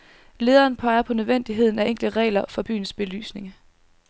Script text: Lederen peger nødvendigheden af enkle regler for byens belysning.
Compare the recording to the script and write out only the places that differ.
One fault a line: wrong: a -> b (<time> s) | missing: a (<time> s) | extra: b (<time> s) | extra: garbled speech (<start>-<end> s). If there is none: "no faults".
extra: på (1.0 s)